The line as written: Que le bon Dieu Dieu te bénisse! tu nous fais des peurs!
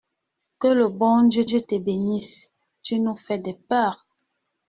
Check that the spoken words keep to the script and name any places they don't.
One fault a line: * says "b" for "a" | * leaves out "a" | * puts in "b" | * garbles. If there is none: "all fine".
all fine